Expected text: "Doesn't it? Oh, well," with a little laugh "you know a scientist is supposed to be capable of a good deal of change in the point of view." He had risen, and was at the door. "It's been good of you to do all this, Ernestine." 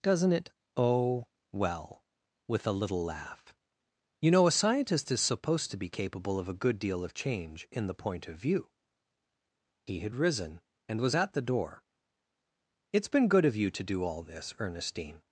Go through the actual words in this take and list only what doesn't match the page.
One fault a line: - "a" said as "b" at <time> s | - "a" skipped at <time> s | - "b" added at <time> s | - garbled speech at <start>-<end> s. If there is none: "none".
none